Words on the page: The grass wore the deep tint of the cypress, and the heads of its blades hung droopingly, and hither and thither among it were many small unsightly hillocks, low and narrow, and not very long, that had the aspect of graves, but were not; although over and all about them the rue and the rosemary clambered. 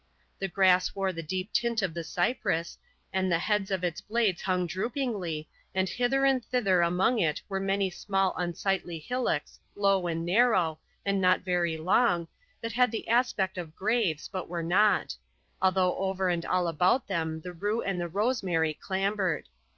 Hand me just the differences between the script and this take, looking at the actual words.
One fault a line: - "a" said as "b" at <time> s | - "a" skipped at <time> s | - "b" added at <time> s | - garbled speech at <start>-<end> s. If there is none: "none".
none